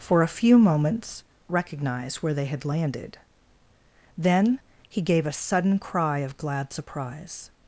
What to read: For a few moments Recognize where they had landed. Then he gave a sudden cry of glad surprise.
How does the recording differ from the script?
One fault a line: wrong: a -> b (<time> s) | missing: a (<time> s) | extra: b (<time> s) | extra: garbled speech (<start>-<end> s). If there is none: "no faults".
no faults